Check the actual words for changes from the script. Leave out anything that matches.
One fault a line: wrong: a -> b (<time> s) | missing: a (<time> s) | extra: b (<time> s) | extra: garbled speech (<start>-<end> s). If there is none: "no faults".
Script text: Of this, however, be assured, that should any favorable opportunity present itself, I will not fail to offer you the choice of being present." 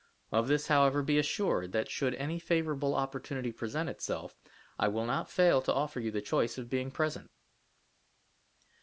no faults